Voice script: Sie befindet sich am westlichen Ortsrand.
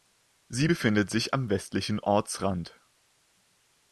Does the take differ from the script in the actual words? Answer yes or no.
no